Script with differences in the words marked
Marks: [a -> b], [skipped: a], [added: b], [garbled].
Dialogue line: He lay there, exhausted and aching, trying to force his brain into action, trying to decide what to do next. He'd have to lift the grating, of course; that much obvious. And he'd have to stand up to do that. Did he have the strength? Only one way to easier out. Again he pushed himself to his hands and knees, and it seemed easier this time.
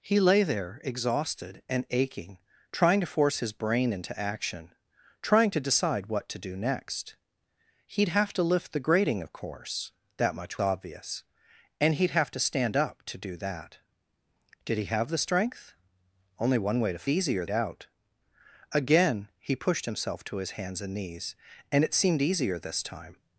He lay there, exhausted and aching, trying to force his brain into action, trying to decide what to do next. He'd have to lift the grating, of course; that much obvious. And he'd have to stand up to do that. Did he have the strength? Only one way to easier out. Again he pushed himself to his hands and knees, and it seemed easier this time.